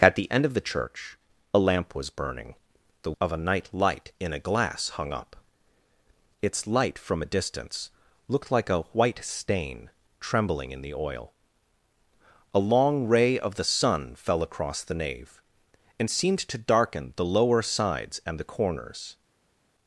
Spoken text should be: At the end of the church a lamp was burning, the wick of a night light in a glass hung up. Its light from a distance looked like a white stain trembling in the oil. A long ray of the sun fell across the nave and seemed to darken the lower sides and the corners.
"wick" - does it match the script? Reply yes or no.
no